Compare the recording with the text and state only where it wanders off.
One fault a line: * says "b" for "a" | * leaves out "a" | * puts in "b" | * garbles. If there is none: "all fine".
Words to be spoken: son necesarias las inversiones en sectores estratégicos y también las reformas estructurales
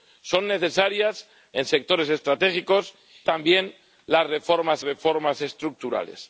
* leaves out "las inversiones"
* leaves out "y"
* puts in "reformas"